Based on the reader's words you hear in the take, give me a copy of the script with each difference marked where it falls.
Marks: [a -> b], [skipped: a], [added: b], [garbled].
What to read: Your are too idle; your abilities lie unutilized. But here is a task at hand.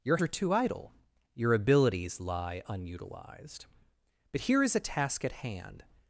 Your are too idle; your abilities lie unutilized. But here is a task at hand.